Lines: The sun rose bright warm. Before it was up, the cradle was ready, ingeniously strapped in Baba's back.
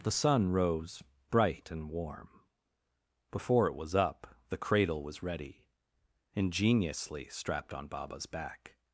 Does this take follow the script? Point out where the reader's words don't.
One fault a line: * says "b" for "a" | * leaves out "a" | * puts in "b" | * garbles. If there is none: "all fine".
* puts in "and"
* says "on" for "in"